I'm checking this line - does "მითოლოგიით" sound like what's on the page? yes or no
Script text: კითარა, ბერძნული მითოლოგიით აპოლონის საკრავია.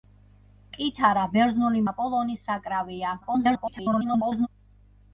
no